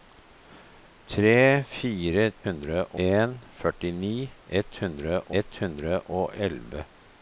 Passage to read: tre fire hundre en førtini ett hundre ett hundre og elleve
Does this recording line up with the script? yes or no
yes